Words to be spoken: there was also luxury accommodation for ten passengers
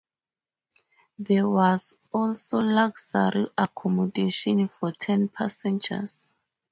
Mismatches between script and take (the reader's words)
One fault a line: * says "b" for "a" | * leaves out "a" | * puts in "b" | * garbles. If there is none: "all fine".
all fine